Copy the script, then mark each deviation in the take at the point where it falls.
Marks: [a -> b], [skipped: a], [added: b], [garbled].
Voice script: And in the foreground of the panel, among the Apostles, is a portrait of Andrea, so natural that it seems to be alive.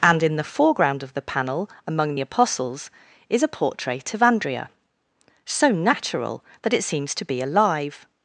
And in the foreground of the panel, among [skipped: the] Apostles, is a portrait of Andrea, so natural that it seems to be alive.